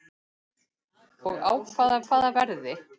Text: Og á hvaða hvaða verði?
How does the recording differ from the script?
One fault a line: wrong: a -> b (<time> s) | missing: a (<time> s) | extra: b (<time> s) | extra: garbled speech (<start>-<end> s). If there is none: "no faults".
no faults